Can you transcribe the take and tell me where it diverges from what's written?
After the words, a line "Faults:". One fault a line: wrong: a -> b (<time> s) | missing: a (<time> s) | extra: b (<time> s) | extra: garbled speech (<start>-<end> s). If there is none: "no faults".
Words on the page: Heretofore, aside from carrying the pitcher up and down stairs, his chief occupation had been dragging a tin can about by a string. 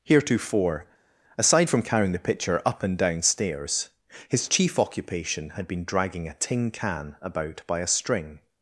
Heretofore, aside from carrying the pitcher up and down stairs, his chief occupation had been dragging a tin can about by a string.
Faults:
no faults